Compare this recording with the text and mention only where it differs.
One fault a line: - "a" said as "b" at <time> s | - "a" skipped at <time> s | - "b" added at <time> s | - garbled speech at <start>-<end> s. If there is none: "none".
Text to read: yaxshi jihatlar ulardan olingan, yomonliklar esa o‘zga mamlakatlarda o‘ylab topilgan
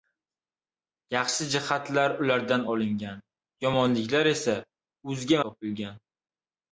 - "mamlakatlarda o‘ylab" skipped at 5.4 s